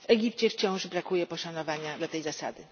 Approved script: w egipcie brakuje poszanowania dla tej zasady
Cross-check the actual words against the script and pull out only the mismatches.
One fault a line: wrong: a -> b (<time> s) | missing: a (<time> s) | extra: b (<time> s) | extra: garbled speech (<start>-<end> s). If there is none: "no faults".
extra: wciąż (0.5 s)